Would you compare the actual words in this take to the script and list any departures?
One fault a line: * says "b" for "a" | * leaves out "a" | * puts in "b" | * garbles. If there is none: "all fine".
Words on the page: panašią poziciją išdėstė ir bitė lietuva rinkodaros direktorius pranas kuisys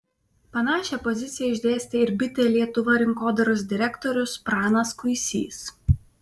all fine